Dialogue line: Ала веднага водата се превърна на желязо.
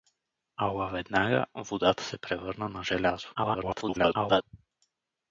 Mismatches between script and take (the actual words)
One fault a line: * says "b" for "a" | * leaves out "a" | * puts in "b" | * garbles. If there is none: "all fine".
* garbles